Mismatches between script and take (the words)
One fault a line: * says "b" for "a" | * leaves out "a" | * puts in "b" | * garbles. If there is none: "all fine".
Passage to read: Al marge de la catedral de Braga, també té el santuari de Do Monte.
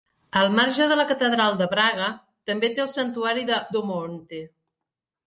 all fine